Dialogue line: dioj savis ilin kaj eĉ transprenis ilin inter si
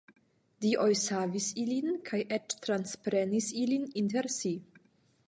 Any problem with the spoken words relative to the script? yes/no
no